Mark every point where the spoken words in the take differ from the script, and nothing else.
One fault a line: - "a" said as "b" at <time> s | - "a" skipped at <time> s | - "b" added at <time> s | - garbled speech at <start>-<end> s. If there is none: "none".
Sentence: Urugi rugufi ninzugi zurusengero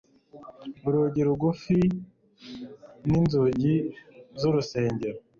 none